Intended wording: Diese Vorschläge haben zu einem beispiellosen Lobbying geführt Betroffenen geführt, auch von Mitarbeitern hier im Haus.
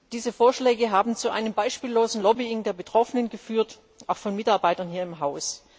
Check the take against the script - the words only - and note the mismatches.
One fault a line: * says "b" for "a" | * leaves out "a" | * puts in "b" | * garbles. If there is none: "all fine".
* says "der" for "geführt"